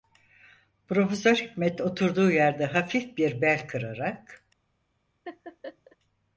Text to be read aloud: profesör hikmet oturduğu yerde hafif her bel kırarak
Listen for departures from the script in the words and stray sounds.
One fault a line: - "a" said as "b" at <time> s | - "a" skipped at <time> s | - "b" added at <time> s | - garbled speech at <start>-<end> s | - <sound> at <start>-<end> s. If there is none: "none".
- "her" said as "bir" at 3.2 s
- laugh at 5.3-6.0 s